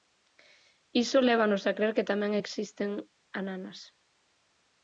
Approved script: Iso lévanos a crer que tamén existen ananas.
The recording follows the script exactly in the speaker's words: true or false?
true